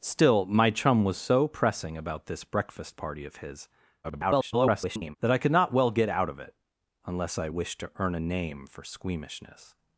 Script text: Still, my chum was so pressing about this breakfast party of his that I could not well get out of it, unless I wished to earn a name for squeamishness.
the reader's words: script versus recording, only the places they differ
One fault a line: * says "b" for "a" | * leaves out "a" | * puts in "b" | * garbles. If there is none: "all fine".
* garbles